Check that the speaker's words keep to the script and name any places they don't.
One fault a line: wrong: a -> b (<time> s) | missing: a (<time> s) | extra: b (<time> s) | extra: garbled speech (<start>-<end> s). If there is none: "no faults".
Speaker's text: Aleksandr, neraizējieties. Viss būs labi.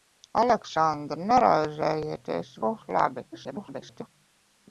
missing: Viss (2.5 s)
extra: garbled speech (3.3-4.1 s)